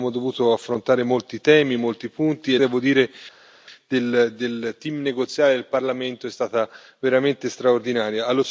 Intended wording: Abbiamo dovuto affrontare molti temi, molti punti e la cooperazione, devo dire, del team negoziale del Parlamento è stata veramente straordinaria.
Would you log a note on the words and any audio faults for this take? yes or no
yes